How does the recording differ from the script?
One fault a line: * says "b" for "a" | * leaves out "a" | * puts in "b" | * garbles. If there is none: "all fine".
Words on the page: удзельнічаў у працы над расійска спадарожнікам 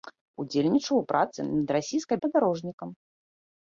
all fine